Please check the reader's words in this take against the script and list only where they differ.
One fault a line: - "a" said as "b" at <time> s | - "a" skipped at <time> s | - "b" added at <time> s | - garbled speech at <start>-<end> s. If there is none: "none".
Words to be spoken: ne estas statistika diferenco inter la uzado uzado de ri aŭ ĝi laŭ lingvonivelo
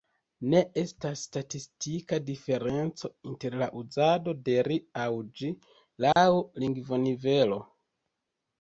- "uzado" skipped at 4.4 s